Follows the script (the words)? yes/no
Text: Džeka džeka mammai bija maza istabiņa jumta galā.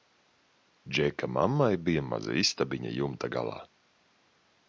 no